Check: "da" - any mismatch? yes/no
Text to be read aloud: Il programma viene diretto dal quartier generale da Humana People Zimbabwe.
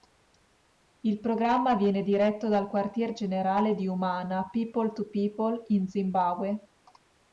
yes